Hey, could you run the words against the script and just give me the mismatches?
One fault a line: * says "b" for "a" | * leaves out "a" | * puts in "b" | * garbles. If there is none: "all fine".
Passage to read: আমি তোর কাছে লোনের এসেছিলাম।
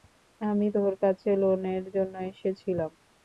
* puts in "জন্য"